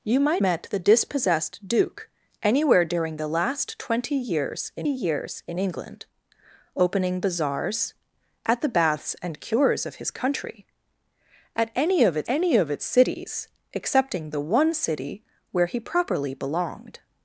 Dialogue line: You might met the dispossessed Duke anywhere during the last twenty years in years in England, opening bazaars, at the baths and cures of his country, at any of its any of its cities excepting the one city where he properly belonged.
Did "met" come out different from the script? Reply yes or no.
no